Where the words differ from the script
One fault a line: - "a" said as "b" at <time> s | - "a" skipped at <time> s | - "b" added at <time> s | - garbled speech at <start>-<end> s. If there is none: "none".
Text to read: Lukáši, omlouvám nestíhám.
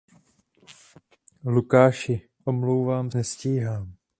none